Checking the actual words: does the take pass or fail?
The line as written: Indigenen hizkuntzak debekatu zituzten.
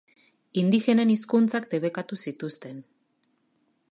pass